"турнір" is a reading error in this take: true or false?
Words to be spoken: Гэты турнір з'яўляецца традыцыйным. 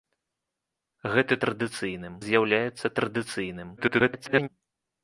true